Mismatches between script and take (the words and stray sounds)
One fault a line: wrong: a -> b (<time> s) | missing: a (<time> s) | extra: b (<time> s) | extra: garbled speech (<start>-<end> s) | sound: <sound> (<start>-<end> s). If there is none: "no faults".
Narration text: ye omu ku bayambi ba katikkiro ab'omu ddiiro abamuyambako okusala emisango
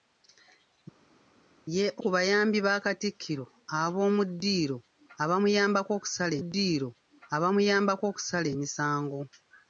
missing: omu (1.8 s)
extra: ddiiro abamuyambako okusala (6.4 s)